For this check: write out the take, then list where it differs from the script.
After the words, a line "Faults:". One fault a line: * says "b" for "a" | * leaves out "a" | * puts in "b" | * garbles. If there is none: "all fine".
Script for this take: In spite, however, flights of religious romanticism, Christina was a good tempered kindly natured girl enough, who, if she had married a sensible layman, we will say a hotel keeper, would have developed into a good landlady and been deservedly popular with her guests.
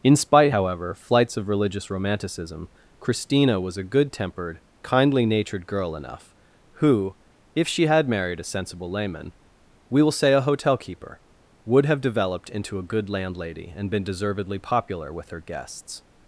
In spite, however, flights of religious romanticism, Christina was a good tempered kindly natured girl enough, who, if she had married a sensible layman, we will say a hotel keeper, would have developed into a good landlady and been deservedly popular with her guests.
Faults:
all fine